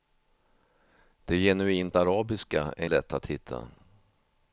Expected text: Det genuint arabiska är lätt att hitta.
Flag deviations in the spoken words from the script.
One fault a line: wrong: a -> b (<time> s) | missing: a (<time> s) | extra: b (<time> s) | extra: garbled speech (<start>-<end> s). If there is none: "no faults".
no faults